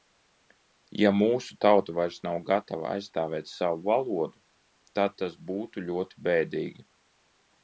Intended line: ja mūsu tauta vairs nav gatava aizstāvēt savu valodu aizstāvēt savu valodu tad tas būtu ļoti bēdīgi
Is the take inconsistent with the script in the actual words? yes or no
yes